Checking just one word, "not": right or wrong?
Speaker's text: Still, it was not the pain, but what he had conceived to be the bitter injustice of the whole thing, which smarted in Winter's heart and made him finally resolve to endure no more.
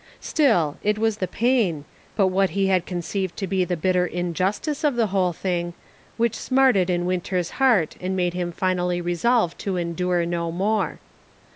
wrong